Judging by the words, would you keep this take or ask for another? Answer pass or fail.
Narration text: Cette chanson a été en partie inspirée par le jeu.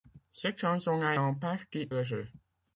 fail